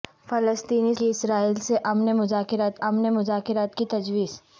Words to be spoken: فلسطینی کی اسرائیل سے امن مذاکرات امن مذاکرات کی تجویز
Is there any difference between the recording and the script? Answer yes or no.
no